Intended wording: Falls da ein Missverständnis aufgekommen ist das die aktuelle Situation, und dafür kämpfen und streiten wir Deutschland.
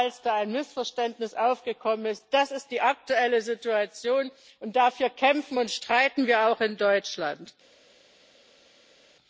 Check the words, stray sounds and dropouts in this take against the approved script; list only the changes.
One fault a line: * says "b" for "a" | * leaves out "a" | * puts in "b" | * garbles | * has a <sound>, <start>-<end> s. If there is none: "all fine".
* puts in "ist"
* puts in "auch in"